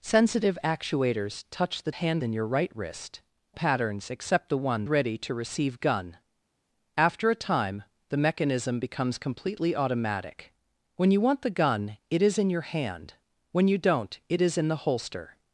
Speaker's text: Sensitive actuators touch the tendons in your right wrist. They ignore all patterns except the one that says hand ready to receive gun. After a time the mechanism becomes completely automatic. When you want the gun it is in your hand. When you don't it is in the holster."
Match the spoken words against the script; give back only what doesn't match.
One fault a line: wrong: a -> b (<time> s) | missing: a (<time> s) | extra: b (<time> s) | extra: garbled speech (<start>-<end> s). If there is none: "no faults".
wrong: tendons -> hand (1.9 s)
missing: They ignore all (3.2 s)
missing: that says hand (4.8 s)